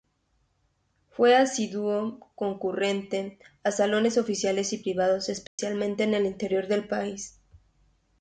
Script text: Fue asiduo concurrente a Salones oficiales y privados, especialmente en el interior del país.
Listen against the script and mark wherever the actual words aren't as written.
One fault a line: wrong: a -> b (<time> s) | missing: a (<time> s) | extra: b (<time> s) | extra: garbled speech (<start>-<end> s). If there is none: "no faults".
no faults